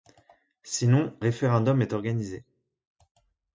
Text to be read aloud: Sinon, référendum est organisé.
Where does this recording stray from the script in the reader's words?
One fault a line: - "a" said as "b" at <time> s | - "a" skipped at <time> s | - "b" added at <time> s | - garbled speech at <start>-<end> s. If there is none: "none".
none